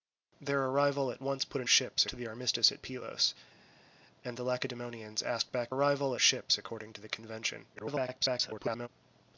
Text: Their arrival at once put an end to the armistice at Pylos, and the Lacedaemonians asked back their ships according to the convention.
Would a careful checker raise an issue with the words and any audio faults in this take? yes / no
yes